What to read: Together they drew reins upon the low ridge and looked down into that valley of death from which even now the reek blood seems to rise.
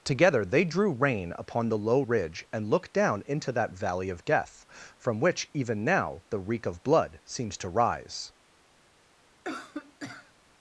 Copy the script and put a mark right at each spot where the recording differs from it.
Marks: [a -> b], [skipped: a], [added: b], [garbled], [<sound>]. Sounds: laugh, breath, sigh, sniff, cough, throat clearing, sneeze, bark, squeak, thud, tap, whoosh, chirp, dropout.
Together they drew [reins -> rein] upon the low ridge and looked down into that valley of death from which even now the reek [added: of] blood seems to rise. [cough]